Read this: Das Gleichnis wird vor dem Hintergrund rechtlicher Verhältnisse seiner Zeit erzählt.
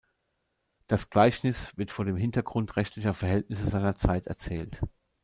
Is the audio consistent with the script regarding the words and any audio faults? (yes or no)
yes